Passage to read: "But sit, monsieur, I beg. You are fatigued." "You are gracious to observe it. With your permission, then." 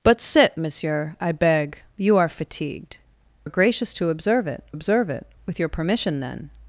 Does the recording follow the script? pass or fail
fail